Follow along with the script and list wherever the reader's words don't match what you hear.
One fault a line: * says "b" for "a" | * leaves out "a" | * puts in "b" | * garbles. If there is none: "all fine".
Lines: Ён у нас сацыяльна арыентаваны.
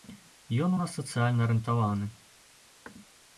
all fine